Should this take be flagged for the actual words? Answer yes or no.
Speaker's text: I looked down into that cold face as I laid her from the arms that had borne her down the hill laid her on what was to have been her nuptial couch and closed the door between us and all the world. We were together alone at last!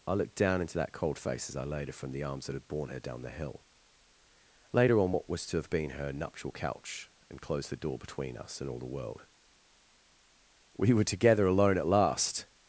no